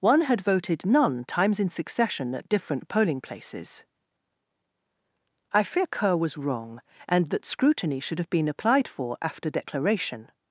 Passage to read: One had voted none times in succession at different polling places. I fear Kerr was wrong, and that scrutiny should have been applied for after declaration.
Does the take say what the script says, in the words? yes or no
yes